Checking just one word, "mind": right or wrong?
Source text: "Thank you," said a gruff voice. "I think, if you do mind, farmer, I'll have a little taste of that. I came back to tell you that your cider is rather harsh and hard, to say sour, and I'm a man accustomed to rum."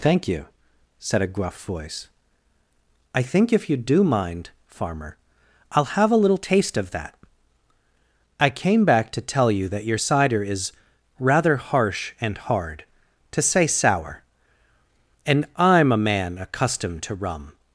right